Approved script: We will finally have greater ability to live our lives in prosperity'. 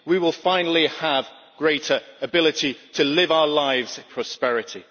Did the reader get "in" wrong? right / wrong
wrong